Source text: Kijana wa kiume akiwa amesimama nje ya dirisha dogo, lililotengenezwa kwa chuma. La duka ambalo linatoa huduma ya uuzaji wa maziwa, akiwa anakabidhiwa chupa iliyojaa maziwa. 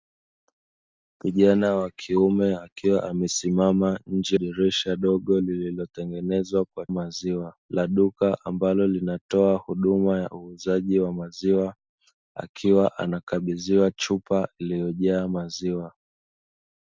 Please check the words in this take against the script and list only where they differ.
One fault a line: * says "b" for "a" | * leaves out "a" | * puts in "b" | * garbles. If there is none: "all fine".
* leaves out "ya"
* says "maziwa" for "chuma"